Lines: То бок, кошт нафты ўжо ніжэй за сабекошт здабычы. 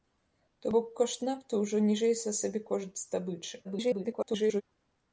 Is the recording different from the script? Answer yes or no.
yes